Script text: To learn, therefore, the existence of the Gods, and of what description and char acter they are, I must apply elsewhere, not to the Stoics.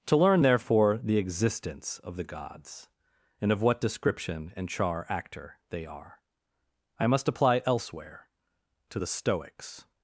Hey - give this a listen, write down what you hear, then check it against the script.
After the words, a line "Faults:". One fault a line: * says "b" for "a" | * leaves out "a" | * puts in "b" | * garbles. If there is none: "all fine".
To learn, therefore, the existence of the Gods, and of what description and char acter they are, I must apply elsewhere, to the Stoics.
Faults:
* leaves out "not"